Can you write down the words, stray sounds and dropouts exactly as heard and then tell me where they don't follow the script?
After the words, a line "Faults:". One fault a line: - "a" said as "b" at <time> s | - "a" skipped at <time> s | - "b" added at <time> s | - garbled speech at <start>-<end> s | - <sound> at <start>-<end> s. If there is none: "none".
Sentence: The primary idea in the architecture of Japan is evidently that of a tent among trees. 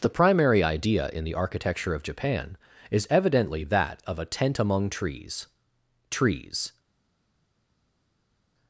The primary idea in the architecture of Japan is evidently that of a tent among trees trees.
Faults:
- "trees" added at 6.1 s